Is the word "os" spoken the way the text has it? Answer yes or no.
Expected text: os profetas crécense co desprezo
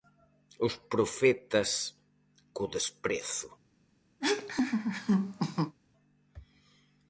yes